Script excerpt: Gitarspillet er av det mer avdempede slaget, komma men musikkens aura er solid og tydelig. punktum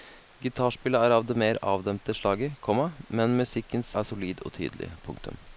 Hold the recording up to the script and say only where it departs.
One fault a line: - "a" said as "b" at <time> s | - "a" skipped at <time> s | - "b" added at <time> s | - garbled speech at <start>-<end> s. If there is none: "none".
- "aura" skipped at 3.9 s